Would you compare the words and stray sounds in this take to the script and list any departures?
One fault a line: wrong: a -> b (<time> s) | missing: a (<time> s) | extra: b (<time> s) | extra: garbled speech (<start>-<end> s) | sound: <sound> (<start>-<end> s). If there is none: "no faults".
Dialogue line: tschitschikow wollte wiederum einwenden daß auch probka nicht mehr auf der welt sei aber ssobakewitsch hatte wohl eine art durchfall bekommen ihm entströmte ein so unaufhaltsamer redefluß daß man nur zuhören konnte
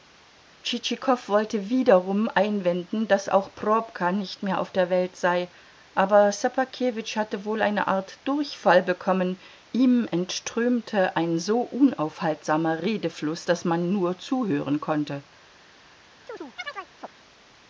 sound: chirp (16.3-17.1 s)